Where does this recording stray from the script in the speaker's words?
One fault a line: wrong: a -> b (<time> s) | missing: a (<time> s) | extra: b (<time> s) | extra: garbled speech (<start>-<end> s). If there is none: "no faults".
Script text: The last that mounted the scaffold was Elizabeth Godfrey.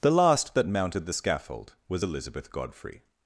no faults